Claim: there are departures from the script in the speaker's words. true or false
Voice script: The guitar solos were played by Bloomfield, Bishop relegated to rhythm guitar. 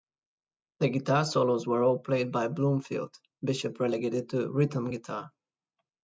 true